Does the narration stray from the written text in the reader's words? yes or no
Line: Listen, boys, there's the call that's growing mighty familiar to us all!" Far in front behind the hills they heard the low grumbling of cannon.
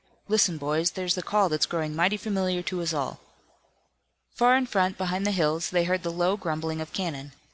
no